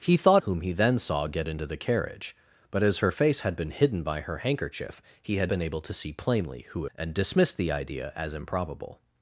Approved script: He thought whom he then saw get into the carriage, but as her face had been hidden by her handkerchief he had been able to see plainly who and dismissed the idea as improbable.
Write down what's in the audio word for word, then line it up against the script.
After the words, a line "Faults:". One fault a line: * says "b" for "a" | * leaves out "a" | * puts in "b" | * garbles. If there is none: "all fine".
He thought whom he then saw get into the carriage, but as her face had been hidden by her handkerchief he had been able to see plainly who and dismissed the idea as improbable.
Faults:
all fine